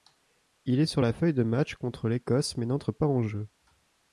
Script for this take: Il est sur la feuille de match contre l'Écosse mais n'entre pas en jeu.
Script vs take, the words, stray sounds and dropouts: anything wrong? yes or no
no